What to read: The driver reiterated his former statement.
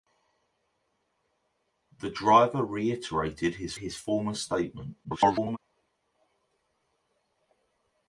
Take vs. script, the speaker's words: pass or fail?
fail